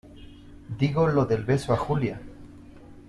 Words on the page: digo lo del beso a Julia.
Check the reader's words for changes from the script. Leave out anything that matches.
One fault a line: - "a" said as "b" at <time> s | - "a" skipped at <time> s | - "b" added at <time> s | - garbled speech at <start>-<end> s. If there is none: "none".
none